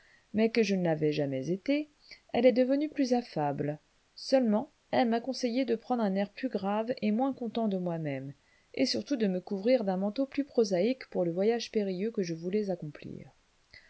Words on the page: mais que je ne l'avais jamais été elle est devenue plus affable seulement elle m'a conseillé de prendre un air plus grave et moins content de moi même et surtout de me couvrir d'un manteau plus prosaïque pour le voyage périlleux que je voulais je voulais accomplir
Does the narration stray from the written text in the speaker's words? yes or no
yes